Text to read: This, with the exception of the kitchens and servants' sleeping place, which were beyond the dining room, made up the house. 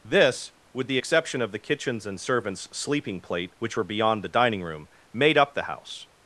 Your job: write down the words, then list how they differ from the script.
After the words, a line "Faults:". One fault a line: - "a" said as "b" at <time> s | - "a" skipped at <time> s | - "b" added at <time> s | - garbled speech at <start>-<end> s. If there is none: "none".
This, with the exception of the kitchens and servants' sleeping plate, which were beyond the dining room, made up the house.
Faults:
- "place" said as "plate" at 3.2 s